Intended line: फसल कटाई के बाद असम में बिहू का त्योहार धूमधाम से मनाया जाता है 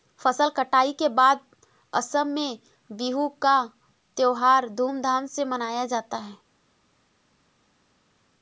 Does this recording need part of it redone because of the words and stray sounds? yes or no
no